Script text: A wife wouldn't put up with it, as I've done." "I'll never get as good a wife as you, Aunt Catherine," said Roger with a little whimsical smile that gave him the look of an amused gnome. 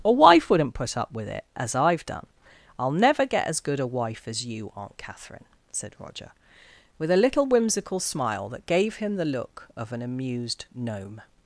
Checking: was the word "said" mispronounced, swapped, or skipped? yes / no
no